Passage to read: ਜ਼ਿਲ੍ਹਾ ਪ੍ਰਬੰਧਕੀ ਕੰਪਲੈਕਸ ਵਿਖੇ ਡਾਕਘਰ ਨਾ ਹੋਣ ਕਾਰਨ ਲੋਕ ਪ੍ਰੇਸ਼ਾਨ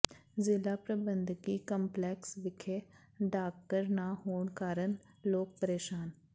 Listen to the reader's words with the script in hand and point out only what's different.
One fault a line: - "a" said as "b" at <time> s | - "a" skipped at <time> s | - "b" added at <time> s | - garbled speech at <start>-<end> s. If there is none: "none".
none